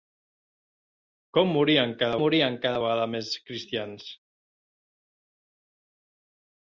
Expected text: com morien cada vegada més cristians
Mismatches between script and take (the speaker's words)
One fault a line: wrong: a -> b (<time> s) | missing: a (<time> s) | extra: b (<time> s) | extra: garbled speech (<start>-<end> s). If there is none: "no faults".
extra: morien cada (2.2 s)